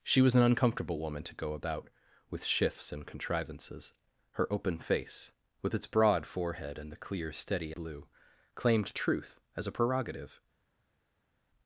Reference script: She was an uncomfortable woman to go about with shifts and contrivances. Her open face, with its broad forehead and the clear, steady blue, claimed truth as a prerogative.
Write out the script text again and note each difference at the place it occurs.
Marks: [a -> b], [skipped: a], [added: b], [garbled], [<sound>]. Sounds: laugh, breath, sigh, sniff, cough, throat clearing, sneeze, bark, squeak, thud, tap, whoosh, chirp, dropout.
She was an uncomfortable woman to go about with shifts and contrivances. Her open face, with its broad forehead and the clear, steady blue, claimed truth as a prerogative.